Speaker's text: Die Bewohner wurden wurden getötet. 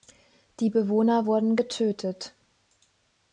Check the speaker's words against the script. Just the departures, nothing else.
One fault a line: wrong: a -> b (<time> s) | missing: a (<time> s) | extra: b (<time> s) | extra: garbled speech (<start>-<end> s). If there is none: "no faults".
missing: wurden (1.6 s)